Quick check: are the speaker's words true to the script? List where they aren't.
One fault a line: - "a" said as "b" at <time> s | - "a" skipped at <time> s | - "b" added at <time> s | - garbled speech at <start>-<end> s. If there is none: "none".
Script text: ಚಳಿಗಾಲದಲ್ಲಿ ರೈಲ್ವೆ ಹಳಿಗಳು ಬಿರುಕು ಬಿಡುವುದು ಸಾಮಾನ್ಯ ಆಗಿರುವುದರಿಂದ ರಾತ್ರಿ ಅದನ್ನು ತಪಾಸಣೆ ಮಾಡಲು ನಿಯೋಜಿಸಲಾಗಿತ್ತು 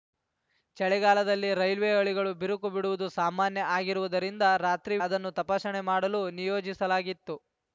none